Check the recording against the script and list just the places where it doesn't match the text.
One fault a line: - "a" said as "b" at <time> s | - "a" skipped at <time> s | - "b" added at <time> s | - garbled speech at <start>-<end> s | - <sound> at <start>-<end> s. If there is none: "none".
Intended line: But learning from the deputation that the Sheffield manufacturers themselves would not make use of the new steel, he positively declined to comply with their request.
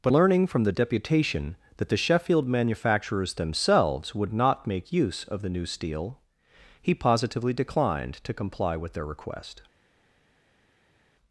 none